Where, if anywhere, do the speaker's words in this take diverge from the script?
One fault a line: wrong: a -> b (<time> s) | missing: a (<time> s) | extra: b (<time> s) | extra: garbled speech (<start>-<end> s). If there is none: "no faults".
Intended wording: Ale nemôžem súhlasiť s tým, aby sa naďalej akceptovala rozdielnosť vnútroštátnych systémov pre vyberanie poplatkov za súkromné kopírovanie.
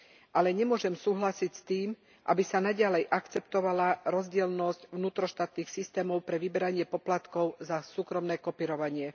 no faults